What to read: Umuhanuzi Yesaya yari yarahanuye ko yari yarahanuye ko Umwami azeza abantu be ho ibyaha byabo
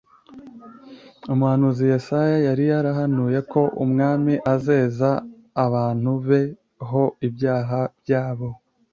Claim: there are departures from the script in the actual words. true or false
true